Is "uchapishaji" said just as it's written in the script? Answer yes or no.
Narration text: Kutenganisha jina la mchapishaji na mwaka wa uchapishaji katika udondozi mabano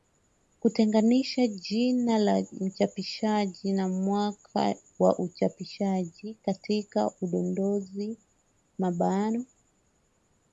yes